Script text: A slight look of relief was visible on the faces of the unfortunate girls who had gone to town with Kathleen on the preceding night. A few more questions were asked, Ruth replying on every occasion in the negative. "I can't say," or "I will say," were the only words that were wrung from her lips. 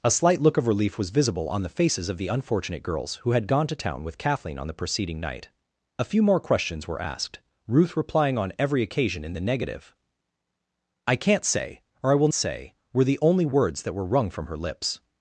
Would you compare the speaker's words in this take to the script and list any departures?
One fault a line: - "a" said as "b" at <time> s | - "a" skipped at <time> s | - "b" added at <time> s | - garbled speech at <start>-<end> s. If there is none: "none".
none